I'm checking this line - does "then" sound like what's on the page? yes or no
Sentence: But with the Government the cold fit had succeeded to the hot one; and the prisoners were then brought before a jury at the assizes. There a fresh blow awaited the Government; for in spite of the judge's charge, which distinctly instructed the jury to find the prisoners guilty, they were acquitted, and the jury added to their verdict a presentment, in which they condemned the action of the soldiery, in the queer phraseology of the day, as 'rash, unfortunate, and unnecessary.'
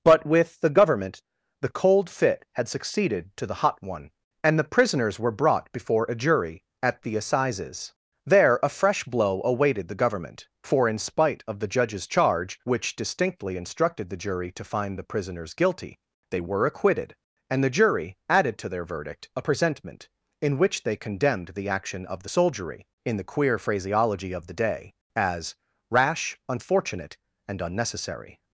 no